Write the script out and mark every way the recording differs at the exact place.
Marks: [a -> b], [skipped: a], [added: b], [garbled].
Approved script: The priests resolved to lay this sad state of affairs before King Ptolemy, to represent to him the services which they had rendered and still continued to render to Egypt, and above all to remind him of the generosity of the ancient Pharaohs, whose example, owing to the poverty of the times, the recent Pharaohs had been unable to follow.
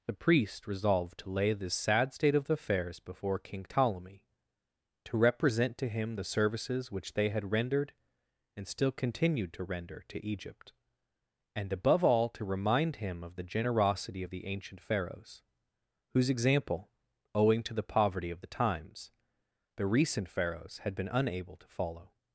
The [priests -> priest] resolved to lay this sad state of affairs before King Ptolemy, to represent to him the services which they had rendered and still continued to render to Egypt, and above all to remind him of the generosity of the ancient Pharaohs, whose example, owing to the poverty of the times, the recent Pharaohs had been unable to follow.